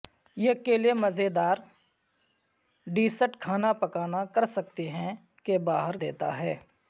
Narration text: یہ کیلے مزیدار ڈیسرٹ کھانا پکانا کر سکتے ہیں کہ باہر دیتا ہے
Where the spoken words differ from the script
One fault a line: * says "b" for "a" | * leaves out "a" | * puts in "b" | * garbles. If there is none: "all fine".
all fine